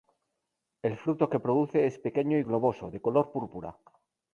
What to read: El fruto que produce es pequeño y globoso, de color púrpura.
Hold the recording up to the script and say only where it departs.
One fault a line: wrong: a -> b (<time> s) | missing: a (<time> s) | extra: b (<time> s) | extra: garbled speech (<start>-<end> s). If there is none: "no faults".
no faults